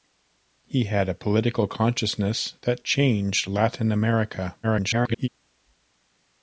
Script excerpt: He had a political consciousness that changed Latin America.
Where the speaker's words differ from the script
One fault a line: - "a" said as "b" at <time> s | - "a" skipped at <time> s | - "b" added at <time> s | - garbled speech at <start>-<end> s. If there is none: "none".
- garbled speech at 4.6-5.3 s